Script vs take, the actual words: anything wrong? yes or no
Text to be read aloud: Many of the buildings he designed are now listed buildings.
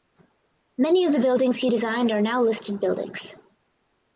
no